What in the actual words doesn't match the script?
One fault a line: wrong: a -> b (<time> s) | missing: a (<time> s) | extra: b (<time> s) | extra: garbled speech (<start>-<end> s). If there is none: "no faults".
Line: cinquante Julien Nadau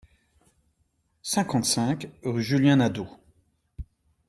extra: cinq rue (1.6 s)